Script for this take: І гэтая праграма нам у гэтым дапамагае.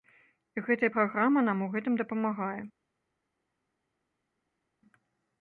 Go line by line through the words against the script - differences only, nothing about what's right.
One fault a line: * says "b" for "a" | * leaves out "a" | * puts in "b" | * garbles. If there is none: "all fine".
all fine